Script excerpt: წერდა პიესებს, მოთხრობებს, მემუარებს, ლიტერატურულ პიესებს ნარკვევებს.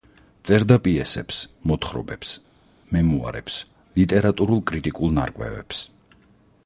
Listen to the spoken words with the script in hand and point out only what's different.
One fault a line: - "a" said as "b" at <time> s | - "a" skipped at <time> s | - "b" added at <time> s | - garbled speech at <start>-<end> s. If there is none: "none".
- "პიესებს" said as "კრიტიკულ" at 4.7 s